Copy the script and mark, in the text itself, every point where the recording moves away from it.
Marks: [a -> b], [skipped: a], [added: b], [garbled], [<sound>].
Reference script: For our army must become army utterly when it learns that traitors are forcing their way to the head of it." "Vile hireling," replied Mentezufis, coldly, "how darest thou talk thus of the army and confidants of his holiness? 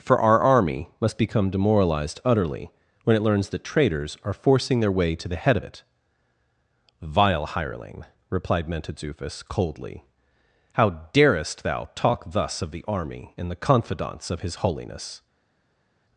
For our army must become [army -> demoralized] utterly when it learns that traitors are forcing their way to the head of it." "Vile hireling," replied Mentezufis, coldly, "how darest thou talk thus of the army and [added: the] confidants of his holiness?